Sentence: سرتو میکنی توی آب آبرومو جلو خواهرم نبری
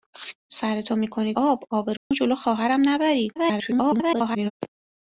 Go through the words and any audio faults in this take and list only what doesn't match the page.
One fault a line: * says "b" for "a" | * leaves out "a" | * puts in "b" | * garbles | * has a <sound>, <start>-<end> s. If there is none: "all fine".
* leaves out "توی"
* has a dropout, 2.0-2.1 s
* garbles